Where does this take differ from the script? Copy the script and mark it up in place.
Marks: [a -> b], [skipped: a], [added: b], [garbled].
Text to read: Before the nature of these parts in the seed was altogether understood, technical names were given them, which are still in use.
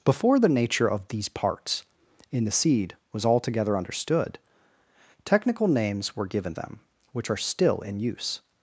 Before the nature of these parts in the seed was altogether understood, technical names were given them, which are still in use.